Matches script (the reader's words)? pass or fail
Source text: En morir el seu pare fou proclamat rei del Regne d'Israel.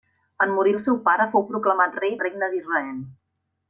fail